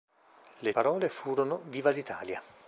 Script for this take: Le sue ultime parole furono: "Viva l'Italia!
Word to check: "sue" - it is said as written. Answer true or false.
false